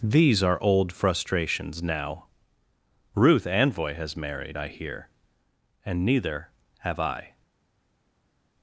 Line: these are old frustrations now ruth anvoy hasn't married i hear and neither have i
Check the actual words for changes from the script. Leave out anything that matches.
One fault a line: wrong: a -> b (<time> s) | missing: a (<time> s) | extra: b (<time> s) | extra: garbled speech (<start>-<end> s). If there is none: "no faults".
wrong: hasn't -> has (3.9 s)